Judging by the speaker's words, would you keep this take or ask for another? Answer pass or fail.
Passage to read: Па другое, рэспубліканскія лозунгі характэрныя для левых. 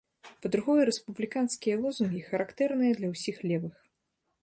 fail